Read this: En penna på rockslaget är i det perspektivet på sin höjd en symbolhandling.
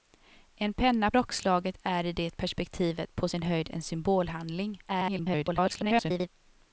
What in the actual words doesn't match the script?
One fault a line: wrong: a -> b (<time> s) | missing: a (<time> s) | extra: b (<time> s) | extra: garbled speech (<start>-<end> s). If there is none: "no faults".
missing: på (1.1 s)
extra: garbled speech (4.9-6.3 s)